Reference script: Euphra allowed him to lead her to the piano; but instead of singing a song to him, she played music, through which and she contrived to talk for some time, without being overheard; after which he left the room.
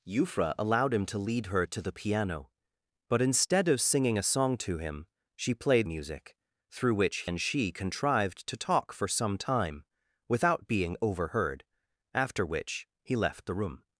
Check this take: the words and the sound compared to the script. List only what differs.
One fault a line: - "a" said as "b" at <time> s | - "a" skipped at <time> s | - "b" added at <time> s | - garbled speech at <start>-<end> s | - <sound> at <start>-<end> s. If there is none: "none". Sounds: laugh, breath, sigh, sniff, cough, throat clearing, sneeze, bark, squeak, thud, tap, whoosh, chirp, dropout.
none